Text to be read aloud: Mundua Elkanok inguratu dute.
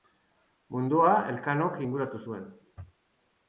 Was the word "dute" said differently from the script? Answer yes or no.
yes